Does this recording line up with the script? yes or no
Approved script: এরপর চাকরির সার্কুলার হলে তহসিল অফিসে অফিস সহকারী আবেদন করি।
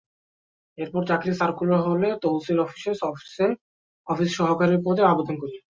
no